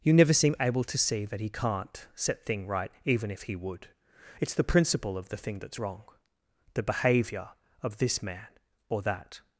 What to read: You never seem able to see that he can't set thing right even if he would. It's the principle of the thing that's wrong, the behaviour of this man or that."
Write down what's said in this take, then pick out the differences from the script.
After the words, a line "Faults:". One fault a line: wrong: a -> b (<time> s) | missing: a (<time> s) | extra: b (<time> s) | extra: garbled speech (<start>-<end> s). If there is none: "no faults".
You never seem able to see that he can't set thing right even if he would. It's the principle of the thing that's wrong, the behaviour of this man or that."
Faults:
no faults